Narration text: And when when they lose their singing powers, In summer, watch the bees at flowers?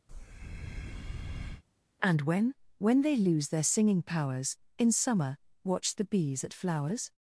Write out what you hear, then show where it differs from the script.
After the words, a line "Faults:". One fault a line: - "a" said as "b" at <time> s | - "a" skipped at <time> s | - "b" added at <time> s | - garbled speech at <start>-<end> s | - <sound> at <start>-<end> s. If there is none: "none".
And when when they lose their singing powers, In summer, watch the bees at flowers?
Faults:
- breath at 0.1-1.6 s